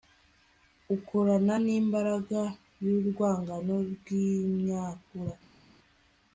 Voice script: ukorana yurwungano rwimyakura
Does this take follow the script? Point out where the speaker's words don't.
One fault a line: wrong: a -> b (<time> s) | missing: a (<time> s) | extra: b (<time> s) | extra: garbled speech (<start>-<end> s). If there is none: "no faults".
extra: nimbaraga (1.6 s)